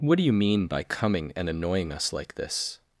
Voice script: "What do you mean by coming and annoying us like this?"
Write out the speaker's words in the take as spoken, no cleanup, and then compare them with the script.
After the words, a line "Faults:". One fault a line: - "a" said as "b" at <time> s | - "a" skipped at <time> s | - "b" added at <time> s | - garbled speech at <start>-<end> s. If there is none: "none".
"What do you mean by coming and annoying us like this?"
Faults:
none